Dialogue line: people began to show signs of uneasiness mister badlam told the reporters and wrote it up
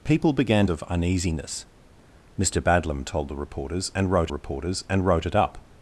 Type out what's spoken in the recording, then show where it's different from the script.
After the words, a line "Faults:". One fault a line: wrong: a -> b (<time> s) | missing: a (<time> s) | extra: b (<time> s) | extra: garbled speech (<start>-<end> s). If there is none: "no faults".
people began of uneasiness mister badlam told the reporters and wrote reporters and wrote it up
Faults:
missing: to show signs (0.7 s)
extra: reporters and wrote (4.3 s)